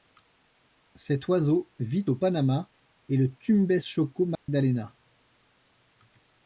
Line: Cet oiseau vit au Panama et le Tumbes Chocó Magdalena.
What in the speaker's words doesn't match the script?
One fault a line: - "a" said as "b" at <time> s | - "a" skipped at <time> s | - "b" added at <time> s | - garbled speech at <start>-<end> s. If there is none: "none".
none